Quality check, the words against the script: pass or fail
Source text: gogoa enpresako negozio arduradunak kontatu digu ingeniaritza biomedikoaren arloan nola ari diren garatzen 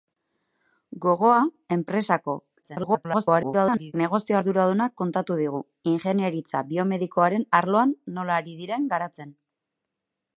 fail